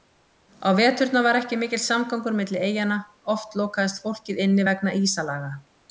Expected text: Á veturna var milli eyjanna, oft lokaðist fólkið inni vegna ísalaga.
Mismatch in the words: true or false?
true